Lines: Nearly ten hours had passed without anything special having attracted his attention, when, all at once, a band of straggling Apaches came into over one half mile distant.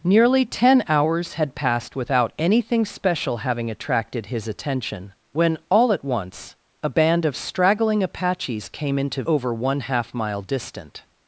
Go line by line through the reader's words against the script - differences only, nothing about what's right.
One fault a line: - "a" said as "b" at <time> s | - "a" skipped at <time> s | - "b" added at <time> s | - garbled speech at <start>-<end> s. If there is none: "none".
none